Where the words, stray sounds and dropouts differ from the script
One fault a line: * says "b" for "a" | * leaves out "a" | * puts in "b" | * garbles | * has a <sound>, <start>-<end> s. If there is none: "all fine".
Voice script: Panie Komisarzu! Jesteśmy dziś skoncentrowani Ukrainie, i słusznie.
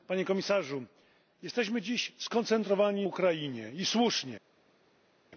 all fine